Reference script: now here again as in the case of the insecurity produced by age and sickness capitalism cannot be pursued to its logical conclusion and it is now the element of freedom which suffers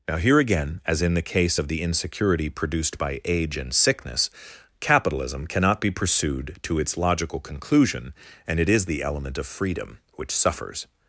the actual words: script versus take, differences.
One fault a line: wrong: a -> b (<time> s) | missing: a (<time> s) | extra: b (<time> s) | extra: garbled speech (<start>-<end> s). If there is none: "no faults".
missing: now (8.9 s)